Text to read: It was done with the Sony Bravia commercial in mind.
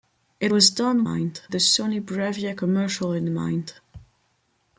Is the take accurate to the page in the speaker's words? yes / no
no